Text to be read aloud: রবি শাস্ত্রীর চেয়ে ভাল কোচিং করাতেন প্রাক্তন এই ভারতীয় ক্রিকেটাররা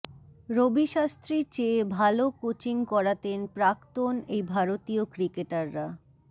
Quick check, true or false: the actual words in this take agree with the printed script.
true